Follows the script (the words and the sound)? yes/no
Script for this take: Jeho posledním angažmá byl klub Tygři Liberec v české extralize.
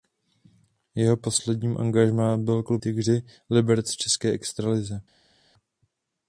yes